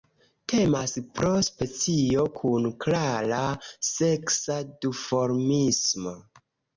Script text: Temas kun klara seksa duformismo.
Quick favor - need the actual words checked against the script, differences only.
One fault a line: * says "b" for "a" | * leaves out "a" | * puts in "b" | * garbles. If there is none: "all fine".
* puts in "pro specio"